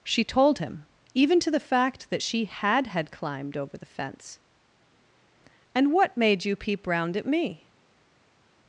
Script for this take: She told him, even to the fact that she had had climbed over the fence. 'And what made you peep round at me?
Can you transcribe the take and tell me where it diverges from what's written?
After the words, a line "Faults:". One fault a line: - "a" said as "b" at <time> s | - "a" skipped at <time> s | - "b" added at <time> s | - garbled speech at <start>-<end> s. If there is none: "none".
She told him, even to the fact that she had had climbed over the fence. 'And what made you peep round at me?
Faults:
none